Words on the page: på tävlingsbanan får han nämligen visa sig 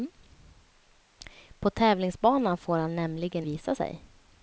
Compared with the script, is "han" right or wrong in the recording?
right